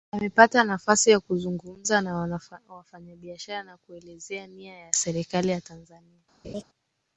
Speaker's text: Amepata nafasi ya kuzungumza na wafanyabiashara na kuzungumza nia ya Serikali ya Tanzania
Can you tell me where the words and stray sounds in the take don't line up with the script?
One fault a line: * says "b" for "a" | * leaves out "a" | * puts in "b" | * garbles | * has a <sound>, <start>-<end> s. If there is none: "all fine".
* says "kuelezea" for "kuzungumza"
* has a laugh, 6.4-6.6 s